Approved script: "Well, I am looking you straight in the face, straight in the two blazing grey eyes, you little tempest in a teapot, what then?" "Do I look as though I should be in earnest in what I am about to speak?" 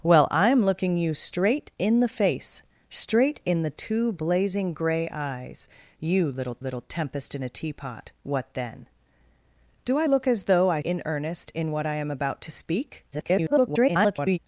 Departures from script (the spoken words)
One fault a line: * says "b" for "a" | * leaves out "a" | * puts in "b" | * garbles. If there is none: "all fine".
* puts in "little"
* leaves out "should be"
* garbles